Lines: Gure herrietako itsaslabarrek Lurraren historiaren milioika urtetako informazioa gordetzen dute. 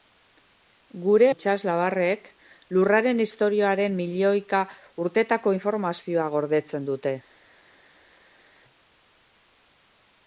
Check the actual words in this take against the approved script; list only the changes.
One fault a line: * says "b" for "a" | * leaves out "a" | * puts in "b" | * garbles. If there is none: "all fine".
* leaves out "herrietako"